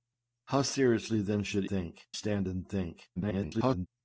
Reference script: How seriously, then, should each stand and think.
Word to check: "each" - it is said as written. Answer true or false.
false